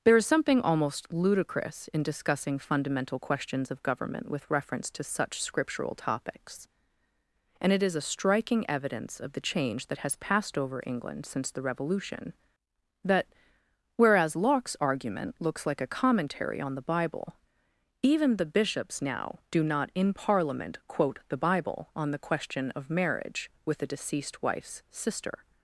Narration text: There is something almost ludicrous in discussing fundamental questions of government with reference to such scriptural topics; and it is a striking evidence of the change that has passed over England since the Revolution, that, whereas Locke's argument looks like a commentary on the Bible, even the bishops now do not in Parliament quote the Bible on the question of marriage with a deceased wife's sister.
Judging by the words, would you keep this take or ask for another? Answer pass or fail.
pass